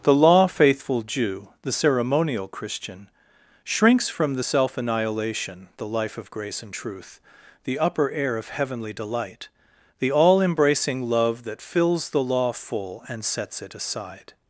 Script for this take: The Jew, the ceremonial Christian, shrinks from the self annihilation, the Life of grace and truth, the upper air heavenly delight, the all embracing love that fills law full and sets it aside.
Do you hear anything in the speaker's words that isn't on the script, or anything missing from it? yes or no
yes